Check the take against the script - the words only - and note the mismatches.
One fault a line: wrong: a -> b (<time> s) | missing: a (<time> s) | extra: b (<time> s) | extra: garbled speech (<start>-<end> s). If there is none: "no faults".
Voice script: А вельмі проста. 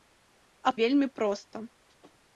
no faults